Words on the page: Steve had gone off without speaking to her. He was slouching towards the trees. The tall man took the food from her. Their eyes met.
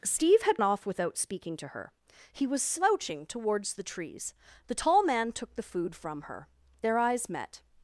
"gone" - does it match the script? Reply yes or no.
no